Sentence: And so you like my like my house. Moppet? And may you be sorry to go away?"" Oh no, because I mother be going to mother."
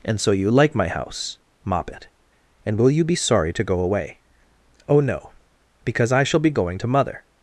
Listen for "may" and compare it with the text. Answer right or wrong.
wrong